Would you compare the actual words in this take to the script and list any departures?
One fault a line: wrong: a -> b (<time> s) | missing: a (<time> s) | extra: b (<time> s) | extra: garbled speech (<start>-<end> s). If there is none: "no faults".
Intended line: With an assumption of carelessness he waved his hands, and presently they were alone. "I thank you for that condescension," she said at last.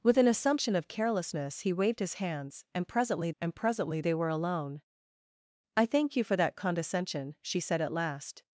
extra: and presently (3.4 s)